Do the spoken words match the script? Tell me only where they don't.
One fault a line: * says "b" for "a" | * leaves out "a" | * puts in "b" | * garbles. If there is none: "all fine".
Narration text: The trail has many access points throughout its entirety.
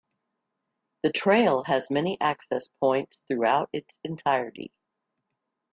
all fine